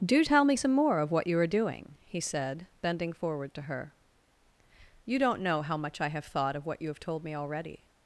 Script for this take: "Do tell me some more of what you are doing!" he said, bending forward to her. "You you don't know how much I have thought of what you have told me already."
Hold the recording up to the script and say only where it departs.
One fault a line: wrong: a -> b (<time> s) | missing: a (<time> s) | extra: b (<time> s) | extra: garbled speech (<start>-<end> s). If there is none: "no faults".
missing: you (5.2 s)